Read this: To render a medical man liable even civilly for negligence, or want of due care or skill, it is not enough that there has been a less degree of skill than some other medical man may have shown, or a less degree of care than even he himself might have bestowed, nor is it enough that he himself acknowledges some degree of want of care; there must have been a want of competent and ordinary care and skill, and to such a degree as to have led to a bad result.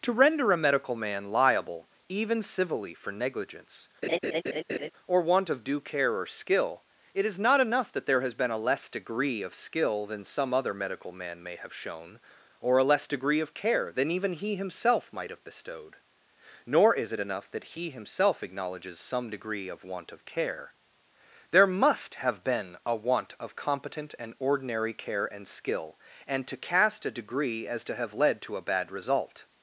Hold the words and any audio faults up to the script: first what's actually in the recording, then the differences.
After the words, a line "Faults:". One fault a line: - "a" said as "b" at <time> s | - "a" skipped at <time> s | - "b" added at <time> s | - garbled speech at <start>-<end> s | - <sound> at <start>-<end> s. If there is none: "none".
To render a medical man liable even civilly for negligence, or want of due care or skill, it is not enough that there has been a less degree of skill than some other medical man may have shown, or a less degree of care than even he himself might have bestowed, nor is it enough that he himself acknowledges some degree of want of care; there must have been a want of competent and ordinary care and skill, and to cast a degree as to have led to a bad result.
Faults:
- laugh at 4.0-4.9 s
- "such" said as "cast" at 26.6 s